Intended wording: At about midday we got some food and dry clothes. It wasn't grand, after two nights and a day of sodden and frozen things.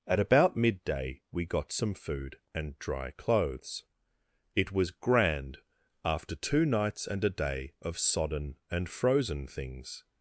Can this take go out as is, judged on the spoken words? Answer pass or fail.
fail